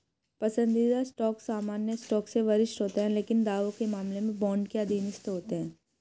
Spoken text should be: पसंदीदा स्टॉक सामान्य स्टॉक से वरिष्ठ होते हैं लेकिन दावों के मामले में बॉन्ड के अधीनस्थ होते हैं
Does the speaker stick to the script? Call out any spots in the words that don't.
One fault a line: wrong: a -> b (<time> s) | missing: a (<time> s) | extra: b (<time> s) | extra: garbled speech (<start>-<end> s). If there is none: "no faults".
no faults